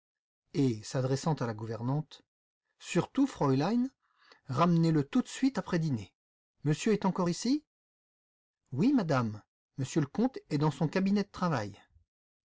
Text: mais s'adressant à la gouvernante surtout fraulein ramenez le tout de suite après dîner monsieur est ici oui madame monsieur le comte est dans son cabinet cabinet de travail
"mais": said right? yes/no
no